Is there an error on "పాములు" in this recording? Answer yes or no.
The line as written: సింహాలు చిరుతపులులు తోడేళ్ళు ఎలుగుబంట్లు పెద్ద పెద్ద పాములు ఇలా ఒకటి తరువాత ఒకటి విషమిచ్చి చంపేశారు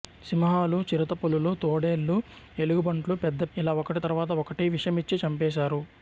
yes